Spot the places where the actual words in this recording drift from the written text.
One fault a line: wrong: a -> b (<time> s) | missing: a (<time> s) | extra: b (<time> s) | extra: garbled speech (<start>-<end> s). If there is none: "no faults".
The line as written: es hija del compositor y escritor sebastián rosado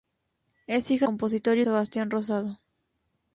missing: del (1.1 s)
missing: escritor (1.6 s)